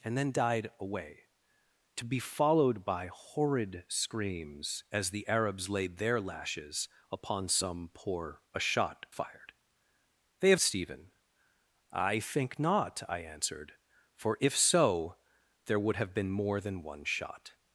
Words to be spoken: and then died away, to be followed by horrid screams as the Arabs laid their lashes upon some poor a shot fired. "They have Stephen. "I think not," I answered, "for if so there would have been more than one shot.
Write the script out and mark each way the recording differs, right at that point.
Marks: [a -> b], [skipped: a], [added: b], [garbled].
and then died away, to be followed by horrid screams as the Arabs laid their lashes upon some poor a shot fired. "They have Stephen. "I think not," I answered, "for if so there would have been more than one shot.